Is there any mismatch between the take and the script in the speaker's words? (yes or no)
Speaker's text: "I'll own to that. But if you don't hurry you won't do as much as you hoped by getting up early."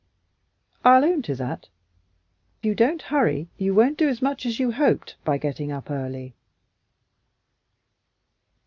yes